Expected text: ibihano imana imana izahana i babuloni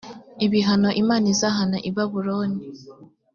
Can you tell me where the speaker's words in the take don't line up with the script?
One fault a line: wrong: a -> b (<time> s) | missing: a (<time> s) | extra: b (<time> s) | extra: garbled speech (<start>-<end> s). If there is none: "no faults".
missing: imana (1.2 s)